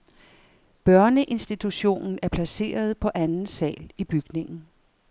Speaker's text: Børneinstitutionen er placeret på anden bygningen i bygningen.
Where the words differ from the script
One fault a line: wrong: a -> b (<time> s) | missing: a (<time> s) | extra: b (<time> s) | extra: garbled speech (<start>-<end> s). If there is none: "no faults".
wrong: bygningen -> sal (3.5 s)